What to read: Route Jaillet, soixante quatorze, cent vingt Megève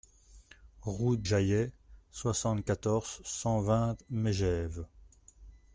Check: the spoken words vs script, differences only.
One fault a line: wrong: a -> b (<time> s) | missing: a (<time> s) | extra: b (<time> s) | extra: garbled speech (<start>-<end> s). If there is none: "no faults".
no faults